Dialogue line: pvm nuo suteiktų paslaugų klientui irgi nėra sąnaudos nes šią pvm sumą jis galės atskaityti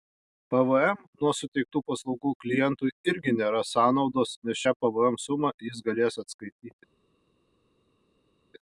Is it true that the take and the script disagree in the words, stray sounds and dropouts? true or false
false